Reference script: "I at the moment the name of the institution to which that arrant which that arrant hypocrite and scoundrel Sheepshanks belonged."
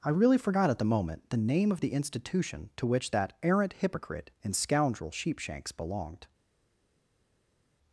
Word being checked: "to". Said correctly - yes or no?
yes